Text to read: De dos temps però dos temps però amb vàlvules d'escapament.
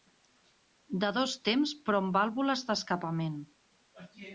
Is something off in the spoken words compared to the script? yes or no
yes